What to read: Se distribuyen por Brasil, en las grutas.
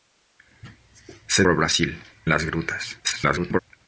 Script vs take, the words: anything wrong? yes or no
yes